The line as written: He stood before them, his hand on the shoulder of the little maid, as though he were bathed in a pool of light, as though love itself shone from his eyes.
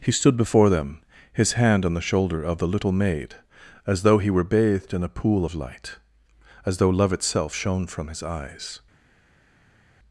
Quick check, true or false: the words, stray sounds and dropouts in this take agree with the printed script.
true